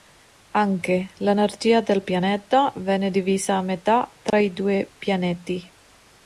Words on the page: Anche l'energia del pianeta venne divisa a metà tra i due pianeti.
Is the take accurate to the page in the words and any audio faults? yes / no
no